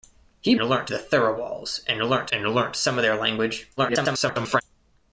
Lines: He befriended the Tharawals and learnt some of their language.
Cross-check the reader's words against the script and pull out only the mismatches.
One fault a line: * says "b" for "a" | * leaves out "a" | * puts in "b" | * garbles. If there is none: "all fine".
* says "learnt" for "befriended"
* puts in "and learnt"
* garbles